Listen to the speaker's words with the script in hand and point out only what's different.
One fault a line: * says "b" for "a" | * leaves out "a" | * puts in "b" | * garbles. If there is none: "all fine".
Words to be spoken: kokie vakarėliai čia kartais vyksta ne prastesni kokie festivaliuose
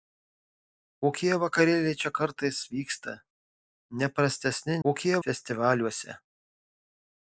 all fine